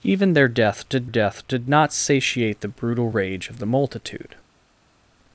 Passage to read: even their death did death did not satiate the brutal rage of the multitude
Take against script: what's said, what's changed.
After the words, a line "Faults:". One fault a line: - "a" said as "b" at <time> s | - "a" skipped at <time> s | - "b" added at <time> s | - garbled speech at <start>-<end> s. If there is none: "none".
even their death did death did not satiate the brutal rage of the multitude
Faults:
none